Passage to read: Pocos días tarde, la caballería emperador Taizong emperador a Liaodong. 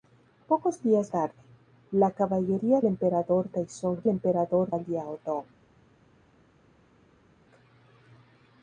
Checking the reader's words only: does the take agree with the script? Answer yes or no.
yes